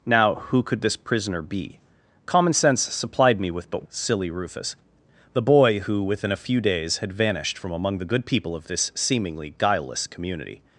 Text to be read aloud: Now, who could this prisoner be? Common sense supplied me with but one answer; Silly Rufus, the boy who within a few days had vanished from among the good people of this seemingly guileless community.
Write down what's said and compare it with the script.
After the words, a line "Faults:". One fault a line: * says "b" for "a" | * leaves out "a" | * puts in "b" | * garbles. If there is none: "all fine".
Now, who could this prisoner be? Common sense supplied me with but; Silly Rufus, the boy who within a few days had vanished from among the good people of this seemingly guileless community.
Faults:
* leaves out "one answer"